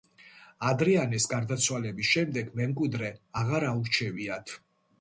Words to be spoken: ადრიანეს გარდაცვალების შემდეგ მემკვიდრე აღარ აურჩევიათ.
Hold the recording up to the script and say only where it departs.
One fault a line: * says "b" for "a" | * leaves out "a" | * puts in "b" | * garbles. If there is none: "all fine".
all fine